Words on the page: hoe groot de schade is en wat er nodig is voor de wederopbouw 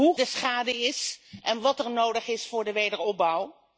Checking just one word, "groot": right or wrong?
wrong